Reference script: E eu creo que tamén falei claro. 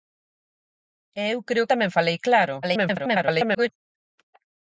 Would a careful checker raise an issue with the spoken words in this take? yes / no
yes